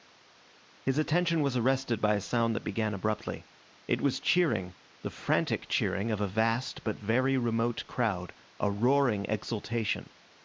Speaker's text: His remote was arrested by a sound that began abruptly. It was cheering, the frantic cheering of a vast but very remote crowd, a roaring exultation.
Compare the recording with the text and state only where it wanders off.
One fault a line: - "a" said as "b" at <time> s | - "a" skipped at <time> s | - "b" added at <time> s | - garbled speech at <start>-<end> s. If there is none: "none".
- "remote" said as "attention" at 1.0 s